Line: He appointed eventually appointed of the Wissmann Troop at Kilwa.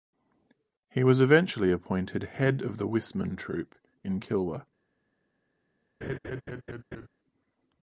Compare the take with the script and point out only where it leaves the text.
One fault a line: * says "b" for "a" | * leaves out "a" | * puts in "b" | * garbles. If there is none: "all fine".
* says "was" for "appointed"
* puts in "head"
* says "in" for "at"